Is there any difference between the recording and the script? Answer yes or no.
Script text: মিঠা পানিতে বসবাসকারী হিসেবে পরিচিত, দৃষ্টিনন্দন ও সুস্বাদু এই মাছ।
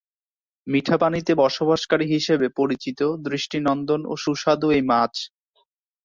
no